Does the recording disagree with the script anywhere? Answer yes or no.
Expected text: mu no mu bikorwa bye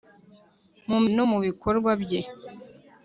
no